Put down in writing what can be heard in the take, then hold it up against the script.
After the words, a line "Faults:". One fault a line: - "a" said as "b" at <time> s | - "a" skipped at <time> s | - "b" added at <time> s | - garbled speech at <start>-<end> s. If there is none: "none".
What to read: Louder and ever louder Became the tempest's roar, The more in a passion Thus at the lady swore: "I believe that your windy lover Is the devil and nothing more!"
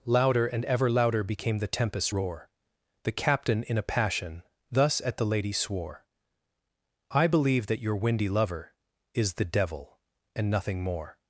Louder and ever louder Became the tempest's roar, The captain in a passion Thus at the lady swore: "I believe that your windy lover Is the devil and nothing more!"
Faults:
- "more" said as "captain" at 3.1 s